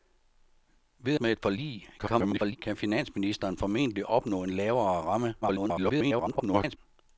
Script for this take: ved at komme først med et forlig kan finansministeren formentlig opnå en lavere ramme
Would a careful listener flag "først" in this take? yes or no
yes